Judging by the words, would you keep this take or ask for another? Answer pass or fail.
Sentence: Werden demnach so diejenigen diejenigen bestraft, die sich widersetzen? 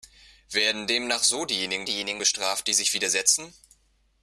pass